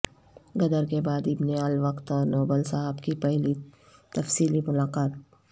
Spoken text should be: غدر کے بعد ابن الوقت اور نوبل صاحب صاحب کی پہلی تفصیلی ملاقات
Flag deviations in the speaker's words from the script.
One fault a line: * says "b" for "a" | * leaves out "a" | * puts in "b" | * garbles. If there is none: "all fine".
* leaves out "صاحب"